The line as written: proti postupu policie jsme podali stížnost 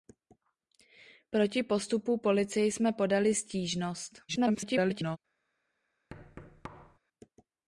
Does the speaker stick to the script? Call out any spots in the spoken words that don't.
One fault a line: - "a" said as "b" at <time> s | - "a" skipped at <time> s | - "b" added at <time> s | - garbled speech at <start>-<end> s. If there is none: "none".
- garbled speech at 4.3-5.2 s